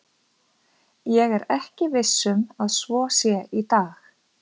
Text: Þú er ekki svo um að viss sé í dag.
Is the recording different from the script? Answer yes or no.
yes